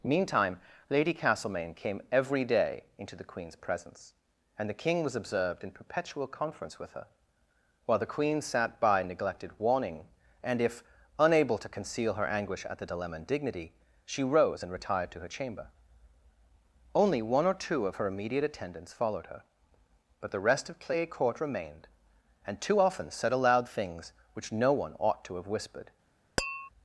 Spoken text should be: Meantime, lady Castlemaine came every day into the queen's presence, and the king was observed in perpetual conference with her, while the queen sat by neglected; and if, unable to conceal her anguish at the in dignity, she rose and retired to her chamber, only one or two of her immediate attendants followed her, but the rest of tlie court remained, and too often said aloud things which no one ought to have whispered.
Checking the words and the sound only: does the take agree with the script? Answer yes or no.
no